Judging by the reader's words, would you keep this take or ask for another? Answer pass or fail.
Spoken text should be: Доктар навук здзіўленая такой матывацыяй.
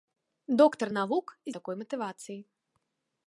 fail